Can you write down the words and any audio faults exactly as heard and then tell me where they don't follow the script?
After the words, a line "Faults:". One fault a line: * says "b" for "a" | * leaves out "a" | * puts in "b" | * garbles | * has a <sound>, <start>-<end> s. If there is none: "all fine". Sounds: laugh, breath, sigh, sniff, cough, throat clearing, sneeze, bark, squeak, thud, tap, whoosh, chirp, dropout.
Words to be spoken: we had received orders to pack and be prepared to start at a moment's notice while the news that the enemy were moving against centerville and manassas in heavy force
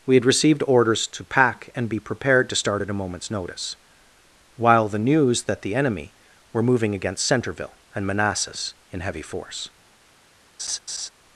we had received orders to pack and be prepared to start at a moment's notice while the news that the enemy were moving against centerville and manassas in heavy force
Faults:
* has a laugh, 10.6-11.1 s